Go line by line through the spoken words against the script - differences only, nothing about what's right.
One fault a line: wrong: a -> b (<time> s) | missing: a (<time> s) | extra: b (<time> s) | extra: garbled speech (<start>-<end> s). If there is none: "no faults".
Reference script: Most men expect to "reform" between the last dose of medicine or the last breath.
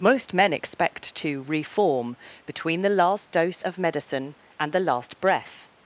wrong: or -> and (4.6 s)